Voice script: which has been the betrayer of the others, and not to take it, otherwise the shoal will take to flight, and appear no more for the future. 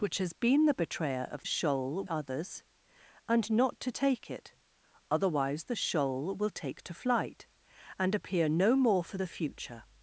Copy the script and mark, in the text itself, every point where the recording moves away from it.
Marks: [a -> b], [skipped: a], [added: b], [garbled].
which has been the betrayer of [the -> shoal] others, and not to take it, otherwise the shoal will take to flight, and appear no more for the future.